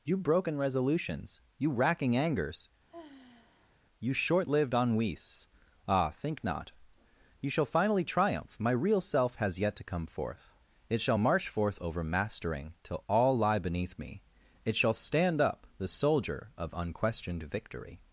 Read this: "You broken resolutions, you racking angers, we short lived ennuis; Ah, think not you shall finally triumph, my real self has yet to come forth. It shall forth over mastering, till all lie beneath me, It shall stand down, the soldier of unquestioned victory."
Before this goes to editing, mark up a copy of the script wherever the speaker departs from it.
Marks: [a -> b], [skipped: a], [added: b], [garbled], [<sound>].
"You broken resolutions, you racking angers, [sigh] [we -> you] short lived ennuis; Ah, think not you shall finally triumph, my real self has yet to come forth. It shall [added: march] forth over mastering, till all lie beneath me, It shall stand [down, -> up] the soldier of unquestioned victory."